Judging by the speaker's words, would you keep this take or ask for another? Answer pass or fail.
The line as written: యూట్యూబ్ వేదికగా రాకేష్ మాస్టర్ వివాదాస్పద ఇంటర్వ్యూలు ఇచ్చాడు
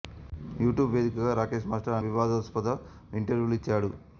pass